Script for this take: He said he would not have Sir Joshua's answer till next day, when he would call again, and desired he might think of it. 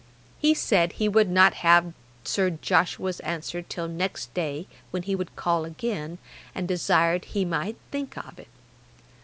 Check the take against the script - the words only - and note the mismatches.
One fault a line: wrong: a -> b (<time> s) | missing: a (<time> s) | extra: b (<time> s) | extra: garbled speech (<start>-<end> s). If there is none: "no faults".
no faults